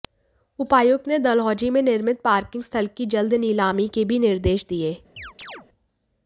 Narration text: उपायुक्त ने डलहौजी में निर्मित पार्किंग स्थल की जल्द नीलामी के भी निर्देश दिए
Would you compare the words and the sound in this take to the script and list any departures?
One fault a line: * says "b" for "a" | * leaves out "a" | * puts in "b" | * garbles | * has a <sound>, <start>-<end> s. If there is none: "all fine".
* has a chirp, 5.2-5.7 s